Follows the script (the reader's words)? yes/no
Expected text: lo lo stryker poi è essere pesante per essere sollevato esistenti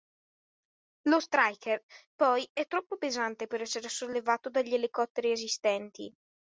no